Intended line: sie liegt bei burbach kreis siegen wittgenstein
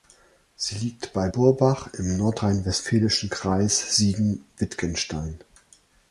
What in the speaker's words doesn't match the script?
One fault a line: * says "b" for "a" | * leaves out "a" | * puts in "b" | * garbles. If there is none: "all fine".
* puts in "im nordrhein westfälischen"